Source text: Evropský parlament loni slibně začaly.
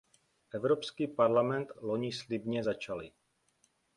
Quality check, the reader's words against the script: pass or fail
pass